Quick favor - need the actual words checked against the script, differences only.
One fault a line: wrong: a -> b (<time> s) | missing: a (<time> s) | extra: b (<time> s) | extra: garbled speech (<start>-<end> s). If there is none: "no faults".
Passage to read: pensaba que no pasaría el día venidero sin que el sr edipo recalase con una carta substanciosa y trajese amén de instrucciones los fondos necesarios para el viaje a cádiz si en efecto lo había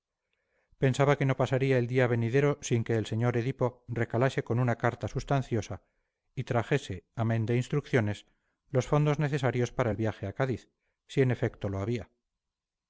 no faults